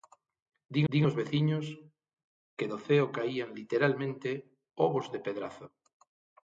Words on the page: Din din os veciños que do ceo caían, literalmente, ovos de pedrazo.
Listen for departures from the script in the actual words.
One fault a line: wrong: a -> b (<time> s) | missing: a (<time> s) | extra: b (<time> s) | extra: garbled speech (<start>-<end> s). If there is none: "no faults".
no faults